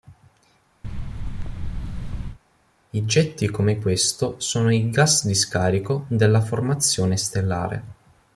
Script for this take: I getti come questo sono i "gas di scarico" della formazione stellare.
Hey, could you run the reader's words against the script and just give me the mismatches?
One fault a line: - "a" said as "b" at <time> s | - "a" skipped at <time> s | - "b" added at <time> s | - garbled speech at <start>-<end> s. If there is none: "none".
none